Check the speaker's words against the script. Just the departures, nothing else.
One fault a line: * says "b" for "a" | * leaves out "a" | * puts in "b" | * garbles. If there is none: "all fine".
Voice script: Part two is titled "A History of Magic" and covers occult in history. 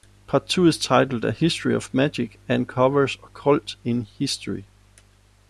all fine